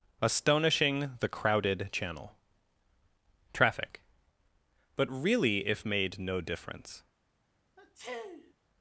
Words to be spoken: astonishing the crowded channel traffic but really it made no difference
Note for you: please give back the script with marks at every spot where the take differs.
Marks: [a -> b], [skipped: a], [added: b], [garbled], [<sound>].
astonishing the crowded channel traffic but really [it -> if] made no difference [sniff]